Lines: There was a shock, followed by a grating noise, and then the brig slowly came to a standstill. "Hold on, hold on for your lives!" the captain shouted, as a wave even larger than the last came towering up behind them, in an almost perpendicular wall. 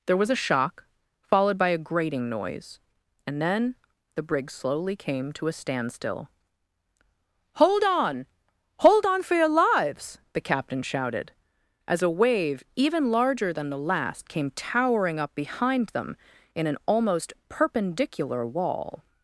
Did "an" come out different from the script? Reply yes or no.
no